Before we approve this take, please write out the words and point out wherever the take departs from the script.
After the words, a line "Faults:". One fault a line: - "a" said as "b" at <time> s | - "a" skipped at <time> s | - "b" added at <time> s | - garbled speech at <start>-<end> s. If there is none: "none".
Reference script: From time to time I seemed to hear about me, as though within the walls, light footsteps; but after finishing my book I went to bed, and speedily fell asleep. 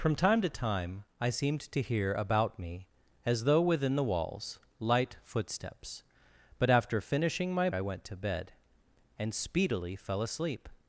From time to time I seemed to hear about me, as though within the walls, light footsteps; but after finishing my I went to bed, and speedily fell asleep.
Faults:
- "book" skipped at 7.7 s